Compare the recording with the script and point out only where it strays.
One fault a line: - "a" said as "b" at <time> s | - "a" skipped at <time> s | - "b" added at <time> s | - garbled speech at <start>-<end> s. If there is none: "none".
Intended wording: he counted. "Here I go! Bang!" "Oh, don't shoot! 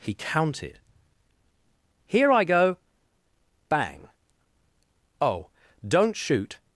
none